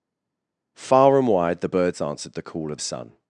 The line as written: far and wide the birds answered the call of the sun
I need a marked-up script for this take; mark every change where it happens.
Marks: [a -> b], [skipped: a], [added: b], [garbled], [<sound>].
far and wide the birds answered the call of [skipped: the] sun